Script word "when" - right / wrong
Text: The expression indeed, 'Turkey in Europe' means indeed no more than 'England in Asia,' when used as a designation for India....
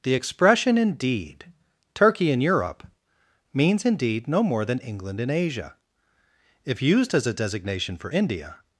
wrong